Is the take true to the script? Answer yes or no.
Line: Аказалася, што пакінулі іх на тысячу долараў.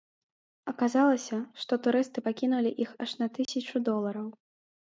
no